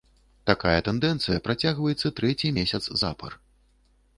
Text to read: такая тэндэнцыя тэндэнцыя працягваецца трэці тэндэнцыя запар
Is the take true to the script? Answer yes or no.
no